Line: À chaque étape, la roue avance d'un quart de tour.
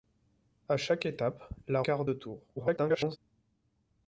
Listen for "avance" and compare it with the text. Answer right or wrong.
wrong